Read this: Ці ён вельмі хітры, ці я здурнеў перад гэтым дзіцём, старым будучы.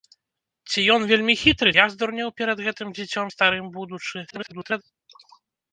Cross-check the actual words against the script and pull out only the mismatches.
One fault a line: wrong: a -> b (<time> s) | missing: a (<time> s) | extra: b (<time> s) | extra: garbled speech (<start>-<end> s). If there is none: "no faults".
missing: ці (1.7 s)
extra: garbled speech (4.3-4.8 s)